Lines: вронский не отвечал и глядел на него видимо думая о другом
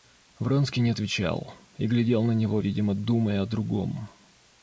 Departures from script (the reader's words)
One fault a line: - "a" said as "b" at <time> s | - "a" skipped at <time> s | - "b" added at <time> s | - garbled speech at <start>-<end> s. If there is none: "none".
none